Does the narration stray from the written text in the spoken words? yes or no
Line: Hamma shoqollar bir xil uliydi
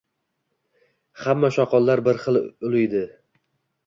no